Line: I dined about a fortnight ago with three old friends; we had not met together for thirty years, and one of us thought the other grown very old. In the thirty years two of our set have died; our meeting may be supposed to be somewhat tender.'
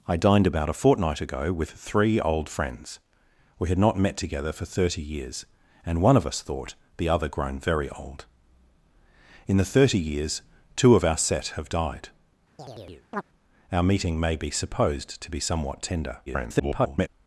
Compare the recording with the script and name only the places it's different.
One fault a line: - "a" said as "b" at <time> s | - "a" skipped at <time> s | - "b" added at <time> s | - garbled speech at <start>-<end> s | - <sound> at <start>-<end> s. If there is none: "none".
- chirp at 12.6-13.2 s
- garbled speech at 16.3-17.1 s